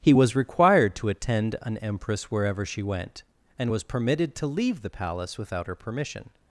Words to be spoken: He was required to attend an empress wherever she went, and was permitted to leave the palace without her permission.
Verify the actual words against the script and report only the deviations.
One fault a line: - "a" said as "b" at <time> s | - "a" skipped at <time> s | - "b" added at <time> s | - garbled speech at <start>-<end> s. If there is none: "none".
none